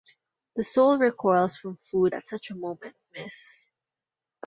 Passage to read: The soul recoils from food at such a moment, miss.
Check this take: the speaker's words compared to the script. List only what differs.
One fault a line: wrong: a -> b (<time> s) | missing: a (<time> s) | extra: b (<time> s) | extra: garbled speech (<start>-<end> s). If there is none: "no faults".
no faults